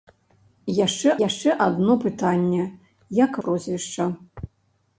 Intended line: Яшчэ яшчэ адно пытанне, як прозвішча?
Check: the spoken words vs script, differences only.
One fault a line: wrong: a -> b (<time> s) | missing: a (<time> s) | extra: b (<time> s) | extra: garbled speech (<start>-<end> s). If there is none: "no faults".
no faults